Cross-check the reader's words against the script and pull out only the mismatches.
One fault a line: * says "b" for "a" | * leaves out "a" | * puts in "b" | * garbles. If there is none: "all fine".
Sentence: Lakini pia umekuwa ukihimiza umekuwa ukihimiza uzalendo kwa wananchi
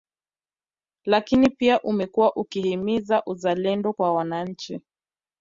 * leaves out "umekuwa ukihimiza"